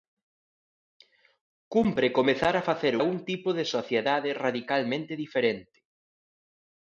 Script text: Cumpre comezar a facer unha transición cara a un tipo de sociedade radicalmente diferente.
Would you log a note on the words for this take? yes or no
yes